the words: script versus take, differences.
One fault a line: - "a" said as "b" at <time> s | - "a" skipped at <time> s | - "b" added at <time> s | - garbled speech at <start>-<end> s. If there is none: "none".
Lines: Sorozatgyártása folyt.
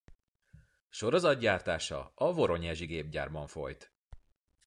- "a Voronyezsi Gépgyárban" added at 2.2 s